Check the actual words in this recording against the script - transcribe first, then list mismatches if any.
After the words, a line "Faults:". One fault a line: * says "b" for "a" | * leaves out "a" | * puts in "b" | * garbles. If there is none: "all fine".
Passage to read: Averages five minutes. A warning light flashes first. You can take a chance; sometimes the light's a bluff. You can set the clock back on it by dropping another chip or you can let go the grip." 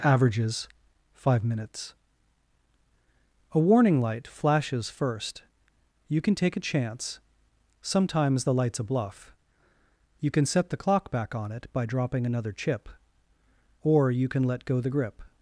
Averages five minutes. A warning light flashes first. You can take a chance; sometimes the light's a bluff. You can set the clock back on it by dropping another chip or you can let go the grip."
Faults:
all fine